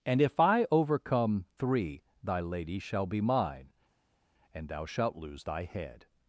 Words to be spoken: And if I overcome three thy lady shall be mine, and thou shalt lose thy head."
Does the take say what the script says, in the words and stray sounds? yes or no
yes